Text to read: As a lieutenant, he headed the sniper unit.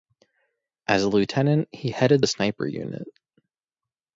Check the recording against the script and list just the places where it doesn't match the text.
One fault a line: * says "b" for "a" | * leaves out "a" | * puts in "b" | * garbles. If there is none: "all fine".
all fine